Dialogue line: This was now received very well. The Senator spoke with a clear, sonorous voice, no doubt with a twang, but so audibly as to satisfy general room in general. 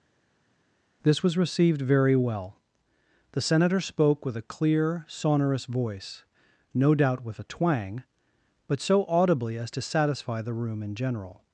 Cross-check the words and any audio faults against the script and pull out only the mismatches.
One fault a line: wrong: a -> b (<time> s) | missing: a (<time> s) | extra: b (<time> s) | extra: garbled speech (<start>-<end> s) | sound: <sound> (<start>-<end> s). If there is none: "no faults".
missing: now (1.4 s)
wrong: general -> the (10.4 s)